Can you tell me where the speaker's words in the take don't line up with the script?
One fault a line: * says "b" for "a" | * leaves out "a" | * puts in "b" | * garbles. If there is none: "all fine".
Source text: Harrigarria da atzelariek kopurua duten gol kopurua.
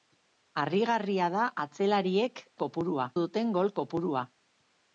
all fine